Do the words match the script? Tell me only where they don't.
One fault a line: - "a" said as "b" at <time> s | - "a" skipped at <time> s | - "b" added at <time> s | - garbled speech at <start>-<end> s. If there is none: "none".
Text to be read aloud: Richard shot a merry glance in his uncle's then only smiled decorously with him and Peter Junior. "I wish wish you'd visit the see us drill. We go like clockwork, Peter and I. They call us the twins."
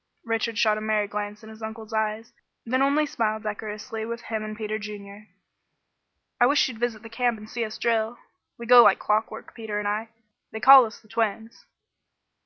- "eyes" added at 1.9 s
- "wish" skipped at 6.7 s
- "camp and" added at 7.1 s